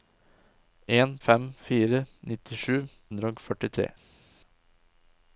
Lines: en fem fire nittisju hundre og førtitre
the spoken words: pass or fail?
pass